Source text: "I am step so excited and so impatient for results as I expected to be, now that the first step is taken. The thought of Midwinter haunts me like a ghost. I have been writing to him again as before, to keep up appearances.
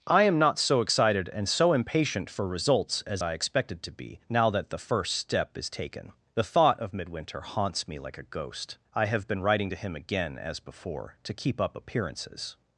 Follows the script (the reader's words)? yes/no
no